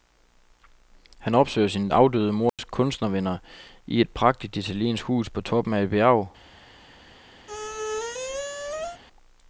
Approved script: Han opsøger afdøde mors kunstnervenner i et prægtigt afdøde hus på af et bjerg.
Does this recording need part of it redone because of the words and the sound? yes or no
yes